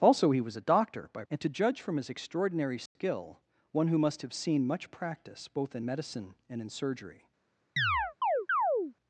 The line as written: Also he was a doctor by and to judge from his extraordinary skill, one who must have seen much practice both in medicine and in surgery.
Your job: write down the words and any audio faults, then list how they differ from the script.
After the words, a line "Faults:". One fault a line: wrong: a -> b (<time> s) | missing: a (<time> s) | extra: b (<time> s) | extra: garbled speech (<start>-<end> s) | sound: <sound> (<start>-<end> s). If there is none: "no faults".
Also he was a doctor by and to judge from his extraordinary skill, one who must have seen much practice both in medicine and in surgery.
Faults:
sound: dropout (2.9-3.0 s)
sound: chirp (7.8-8.9 s)